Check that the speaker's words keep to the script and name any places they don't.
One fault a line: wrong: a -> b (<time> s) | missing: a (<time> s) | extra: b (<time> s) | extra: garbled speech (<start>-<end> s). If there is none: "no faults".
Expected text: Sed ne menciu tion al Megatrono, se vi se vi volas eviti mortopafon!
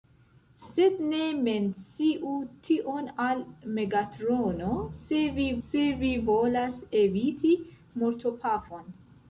no faults